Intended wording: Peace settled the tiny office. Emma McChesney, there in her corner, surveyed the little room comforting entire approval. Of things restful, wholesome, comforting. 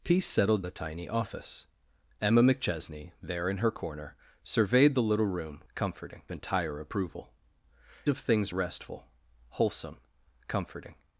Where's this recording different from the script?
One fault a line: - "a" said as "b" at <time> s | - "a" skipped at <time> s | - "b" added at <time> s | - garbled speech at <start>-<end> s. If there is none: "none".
none